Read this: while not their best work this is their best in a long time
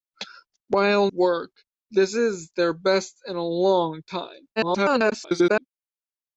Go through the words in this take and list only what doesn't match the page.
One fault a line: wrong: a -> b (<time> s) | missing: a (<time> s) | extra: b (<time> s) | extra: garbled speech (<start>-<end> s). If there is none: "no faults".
missing: not their best (1.1 s)
extra: garbled speech (4.6-5.7 s)